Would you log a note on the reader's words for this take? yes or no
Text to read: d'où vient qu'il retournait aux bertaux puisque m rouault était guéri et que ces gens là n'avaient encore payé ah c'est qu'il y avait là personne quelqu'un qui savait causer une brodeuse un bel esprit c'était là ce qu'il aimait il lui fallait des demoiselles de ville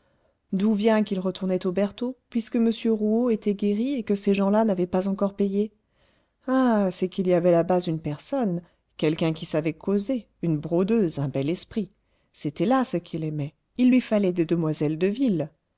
yes